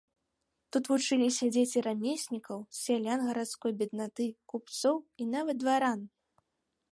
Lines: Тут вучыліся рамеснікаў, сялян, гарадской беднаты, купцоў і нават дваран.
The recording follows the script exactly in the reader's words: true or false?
false